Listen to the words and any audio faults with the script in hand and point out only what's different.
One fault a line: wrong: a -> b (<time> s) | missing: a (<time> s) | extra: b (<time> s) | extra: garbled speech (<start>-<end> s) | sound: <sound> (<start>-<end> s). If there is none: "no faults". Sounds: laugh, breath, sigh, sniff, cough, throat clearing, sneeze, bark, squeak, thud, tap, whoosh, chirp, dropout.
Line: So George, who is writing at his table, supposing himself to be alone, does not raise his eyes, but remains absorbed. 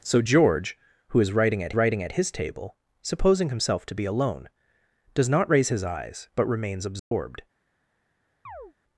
extra: writing at (1.7 s)
sound: dropout (7.0-7.1 s)
sound: chirp (8.5-8.7 s)